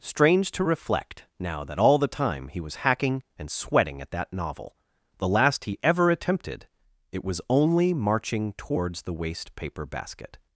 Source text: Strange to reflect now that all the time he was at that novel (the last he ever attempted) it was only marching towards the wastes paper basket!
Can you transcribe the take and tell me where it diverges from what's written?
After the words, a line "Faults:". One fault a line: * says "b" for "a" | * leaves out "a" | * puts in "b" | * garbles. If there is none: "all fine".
Strange to reflect now that all the time he was hacking and sweating at that novel (the last he ever attempted) it was only marching towards the waste paper basket!
Faults:
* puts in "hacking and sweating"
* says "waste" for "wastes"